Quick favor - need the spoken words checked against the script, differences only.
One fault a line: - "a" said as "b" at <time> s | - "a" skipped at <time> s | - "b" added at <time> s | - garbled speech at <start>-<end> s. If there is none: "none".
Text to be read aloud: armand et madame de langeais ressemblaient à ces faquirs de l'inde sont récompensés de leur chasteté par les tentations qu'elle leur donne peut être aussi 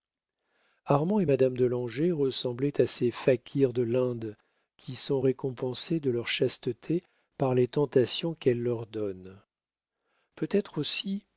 - "qui" added at 4.8 s